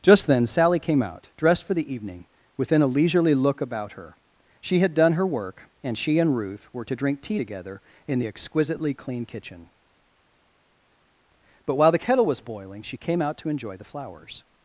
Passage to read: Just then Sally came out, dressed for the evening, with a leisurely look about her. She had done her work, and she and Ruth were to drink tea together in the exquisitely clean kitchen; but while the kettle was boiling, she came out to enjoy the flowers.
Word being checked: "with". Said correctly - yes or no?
no